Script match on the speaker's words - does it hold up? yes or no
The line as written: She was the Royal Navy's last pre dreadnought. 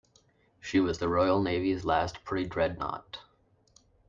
yes